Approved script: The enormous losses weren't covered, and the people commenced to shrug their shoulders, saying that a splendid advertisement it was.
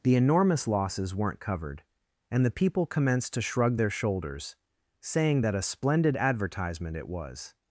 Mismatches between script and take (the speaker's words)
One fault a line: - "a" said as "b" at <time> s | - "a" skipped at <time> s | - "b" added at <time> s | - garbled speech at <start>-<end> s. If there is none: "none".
none